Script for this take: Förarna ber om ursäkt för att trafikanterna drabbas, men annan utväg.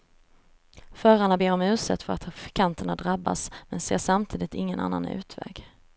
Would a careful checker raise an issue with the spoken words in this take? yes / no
yes